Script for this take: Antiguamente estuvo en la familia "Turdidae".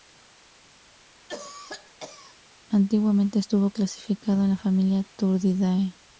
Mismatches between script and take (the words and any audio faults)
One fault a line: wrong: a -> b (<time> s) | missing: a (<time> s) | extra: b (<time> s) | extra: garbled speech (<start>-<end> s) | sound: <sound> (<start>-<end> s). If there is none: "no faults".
sound: cough (1.3-2.4 s)
extra: clasificado (3.7 s)